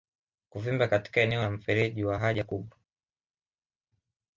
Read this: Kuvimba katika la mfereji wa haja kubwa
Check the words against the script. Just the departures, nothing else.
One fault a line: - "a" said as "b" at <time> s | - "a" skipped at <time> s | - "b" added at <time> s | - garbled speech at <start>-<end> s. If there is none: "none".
- "eneo" added at 1.2 s